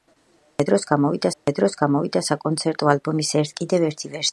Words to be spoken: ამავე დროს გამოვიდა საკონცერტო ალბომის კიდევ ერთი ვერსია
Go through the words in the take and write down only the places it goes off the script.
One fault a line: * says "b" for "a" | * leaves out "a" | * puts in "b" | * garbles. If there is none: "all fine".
* puts in "ამავე დროს გამოვიდა"